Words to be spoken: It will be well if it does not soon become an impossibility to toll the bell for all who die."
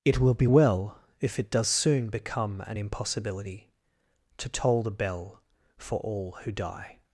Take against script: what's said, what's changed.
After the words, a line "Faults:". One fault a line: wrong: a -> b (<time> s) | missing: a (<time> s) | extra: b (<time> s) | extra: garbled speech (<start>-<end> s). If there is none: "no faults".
It will be well if it does soon become an impossibility to toll the bell for all who die."
Faults:
missing: not (1.7 s)